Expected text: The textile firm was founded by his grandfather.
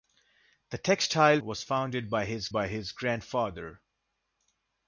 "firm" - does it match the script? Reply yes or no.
no